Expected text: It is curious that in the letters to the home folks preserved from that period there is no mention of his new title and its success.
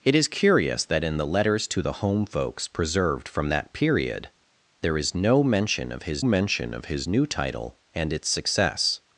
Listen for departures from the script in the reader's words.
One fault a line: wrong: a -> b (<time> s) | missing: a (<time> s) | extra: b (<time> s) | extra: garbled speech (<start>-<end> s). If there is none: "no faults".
extra: mention of his (6.2 s)